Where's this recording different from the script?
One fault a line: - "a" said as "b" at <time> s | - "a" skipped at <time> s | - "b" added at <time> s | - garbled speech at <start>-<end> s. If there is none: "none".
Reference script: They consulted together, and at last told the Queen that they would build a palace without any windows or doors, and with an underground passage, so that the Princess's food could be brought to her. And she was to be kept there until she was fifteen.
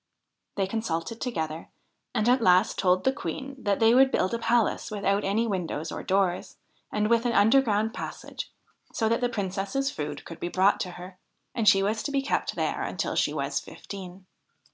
none